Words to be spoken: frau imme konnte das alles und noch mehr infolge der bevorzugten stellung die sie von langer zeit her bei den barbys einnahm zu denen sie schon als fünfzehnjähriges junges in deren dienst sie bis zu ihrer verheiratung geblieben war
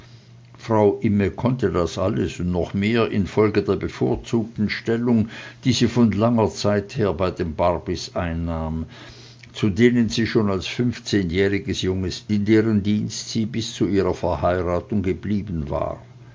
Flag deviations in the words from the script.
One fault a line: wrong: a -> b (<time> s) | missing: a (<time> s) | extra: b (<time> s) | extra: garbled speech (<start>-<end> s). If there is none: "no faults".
no faults